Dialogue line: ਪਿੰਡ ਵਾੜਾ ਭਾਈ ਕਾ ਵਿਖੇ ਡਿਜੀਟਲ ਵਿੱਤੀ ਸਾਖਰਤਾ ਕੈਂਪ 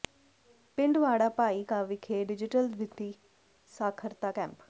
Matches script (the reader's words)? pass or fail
pass